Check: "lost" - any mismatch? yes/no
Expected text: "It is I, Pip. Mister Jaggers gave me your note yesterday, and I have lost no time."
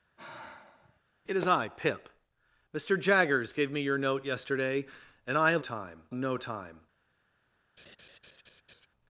yes